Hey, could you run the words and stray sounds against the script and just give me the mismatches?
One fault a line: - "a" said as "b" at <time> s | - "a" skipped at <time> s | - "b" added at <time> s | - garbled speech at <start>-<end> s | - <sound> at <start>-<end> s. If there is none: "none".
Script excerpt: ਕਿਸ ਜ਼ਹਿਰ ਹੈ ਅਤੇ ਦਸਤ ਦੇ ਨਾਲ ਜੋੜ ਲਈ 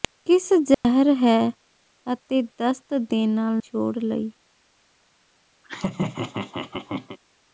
- dropout at 0.7-0.8 s
- laugh at 5.6-7.2 s